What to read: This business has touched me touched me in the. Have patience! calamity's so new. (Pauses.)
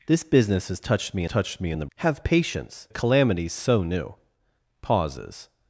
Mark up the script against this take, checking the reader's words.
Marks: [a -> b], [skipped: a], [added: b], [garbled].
This business has touched me touched me in the. Have patience! calamity's so new. (Pauses.)